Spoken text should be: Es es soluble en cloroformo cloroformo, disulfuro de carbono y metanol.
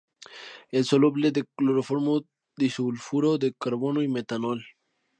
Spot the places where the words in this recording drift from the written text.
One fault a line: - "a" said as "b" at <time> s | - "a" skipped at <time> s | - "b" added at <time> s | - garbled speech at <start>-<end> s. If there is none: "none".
- "es" skipped at 0.9 s
- "cloroformo" skipped at 2.2 s